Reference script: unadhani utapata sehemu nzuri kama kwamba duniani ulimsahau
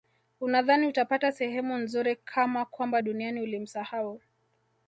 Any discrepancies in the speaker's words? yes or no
no